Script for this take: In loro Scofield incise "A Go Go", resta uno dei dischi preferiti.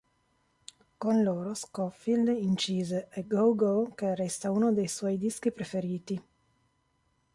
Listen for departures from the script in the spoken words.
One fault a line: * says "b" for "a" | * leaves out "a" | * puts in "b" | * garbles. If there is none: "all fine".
* says "Con" for "In"
* puts in "che"
* puts in "suoi"